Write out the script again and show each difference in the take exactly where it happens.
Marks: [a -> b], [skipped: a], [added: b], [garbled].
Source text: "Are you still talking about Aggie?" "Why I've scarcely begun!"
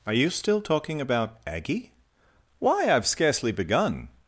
"Are you still talking about Aggie?" "Why I've scarcely begun!"